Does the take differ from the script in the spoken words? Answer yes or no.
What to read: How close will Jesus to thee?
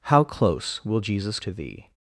no